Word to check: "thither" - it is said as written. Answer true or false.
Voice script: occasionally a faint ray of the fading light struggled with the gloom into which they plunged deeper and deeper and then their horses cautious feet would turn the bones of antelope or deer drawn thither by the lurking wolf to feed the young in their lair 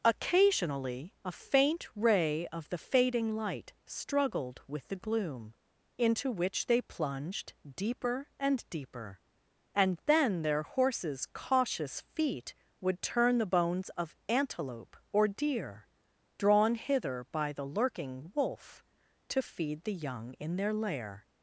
false